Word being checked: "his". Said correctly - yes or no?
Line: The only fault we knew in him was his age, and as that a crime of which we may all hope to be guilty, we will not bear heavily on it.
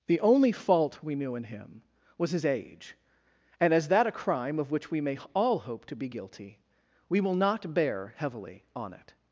yes